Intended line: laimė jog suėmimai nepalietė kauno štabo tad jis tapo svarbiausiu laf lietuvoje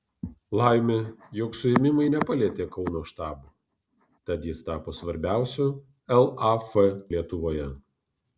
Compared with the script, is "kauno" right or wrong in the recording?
right